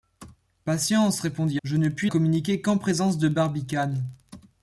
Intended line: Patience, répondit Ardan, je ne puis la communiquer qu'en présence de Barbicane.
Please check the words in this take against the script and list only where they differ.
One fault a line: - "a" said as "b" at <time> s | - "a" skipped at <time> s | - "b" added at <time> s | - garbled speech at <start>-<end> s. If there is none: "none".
- "Ardan" skipped at 1.6 s
- "la" skipped at 2.1 s